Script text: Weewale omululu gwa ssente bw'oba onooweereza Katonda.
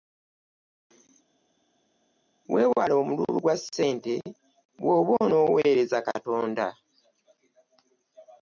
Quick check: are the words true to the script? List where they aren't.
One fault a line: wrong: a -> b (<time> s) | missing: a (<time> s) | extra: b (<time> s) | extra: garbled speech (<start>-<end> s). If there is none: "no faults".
no faults